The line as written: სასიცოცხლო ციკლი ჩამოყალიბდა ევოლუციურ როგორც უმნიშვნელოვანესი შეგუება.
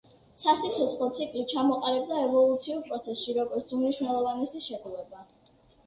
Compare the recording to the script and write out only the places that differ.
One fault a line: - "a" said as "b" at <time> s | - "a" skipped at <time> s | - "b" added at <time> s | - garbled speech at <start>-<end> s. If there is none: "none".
- "პროცესში" added at 2.9 s